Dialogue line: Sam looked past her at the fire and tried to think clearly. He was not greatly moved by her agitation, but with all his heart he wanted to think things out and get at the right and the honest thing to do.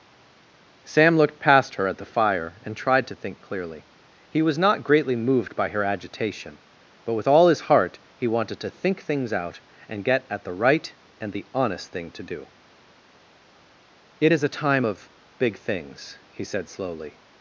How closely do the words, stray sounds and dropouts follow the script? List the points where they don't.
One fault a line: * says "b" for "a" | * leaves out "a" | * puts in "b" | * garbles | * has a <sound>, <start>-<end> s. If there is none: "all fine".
* puts in "It is a time of big things he said slowly"